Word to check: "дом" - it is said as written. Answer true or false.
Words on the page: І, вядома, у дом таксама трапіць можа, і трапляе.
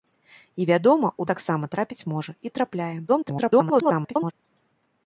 false